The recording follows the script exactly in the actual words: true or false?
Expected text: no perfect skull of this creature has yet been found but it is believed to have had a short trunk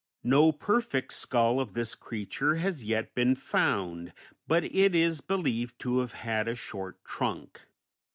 true